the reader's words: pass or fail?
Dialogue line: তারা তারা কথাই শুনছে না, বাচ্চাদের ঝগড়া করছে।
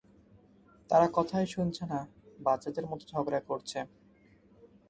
fail